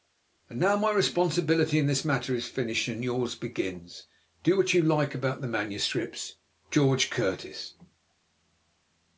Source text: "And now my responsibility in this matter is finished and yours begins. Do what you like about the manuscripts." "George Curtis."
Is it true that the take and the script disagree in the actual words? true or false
false